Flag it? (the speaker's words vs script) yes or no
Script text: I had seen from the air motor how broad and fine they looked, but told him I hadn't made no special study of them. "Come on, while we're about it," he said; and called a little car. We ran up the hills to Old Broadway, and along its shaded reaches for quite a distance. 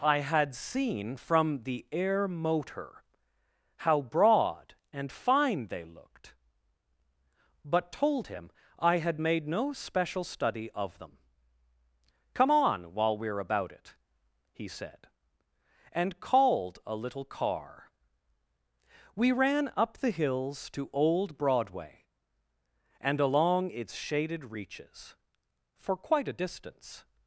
yes